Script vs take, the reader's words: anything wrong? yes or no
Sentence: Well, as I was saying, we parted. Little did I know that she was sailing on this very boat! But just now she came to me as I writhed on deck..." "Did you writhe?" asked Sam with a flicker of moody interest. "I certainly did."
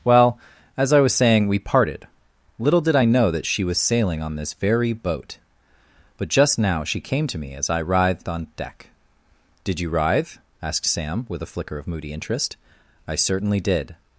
no